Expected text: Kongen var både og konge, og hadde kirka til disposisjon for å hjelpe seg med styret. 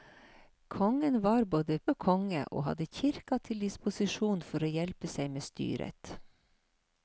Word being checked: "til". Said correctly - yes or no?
yes